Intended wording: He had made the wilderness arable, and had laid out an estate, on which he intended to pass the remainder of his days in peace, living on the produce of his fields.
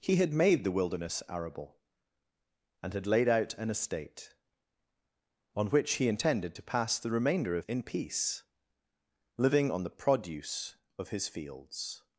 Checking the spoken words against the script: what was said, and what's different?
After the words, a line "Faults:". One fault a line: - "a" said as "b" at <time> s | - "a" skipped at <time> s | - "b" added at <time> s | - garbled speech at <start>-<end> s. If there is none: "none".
He had made the wilderness arable, and had laid out an estate, on which he intended to pass the remainder of in peace, living on the produce of his fields.
Faults:
- "his days" skipped at 7.7 s